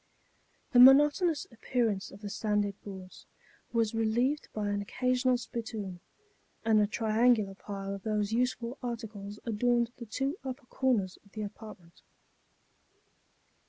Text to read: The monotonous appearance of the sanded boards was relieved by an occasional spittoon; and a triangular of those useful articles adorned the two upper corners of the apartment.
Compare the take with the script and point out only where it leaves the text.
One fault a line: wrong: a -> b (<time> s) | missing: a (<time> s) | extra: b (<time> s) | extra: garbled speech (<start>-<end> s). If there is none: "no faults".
extra: pile (7.6 s)